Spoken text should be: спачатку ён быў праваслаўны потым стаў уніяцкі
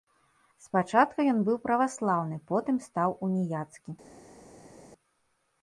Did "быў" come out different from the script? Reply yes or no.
no